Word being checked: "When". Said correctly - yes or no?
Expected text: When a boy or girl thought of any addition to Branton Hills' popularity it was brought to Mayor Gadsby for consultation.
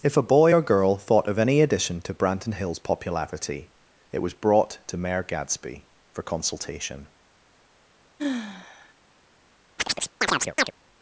no